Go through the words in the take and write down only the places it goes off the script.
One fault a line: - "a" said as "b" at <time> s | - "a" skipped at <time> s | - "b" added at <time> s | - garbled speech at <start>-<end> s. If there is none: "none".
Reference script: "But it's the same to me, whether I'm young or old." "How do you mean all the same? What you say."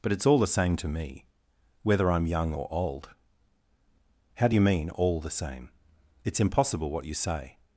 - "all" added at 0.2 s
- "It's impossible" added at 6.2 s